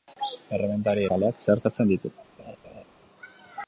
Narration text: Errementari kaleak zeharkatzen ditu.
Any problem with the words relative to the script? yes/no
no